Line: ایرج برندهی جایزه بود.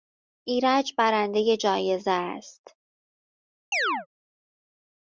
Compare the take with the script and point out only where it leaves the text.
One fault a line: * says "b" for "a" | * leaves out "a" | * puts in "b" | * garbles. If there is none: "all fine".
* says "است" for "بود"